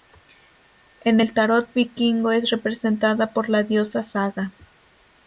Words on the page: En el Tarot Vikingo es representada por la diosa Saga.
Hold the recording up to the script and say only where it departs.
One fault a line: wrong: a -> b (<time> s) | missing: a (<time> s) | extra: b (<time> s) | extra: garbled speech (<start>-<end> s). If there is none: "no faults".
no faults